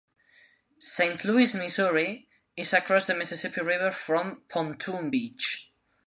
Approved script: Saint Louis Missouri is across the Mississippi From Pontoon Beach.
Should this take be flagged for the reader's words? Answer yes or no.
yes